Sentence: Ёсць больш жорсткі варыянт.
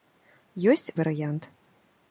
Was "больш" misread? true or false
true